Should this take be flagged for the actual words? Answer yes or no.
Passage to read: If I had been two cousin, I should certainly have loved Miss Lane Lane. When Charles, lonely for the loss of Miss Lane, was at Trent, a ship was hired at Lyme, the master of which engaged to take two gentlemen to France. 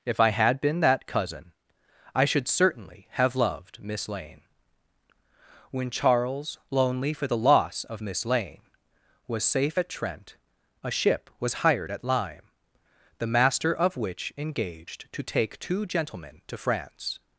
yes